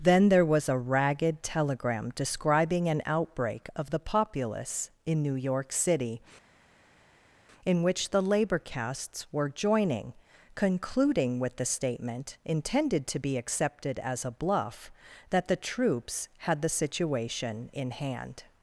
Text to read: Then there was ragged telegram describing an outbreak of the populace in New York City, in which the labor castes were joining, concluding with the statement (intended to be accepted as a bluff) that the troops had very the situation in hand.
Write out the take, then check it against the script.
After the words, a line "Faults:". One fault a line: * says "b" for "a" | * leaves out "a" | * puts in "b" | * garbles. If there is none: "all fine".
Then there was a ragged telegram describing an outbreak of the populace in New York City, in which the labor castes were joining, concluding with the statement (intended to be accepted as a bluff) that the troops had the situation in hand.
Faults:
* puts in "a"
* leaves out "very"